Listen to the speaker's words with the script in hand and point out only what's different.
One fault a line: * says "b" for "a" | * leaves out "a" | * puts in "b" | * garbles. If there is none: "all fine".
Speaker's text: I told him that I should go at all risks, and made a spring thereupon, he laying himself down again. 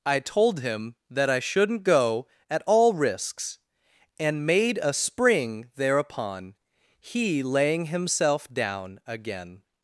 * says "shouldn't" for "should"